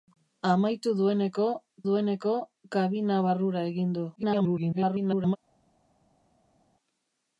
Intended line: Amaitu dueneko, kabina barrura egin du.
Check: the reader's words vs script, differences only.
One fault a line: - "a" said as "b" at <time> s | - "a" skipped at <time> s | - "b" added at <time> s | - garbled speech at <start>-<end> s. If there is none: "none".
- "dueneko" added at 1.9 s
- garbled speech at 4.2-5.4 s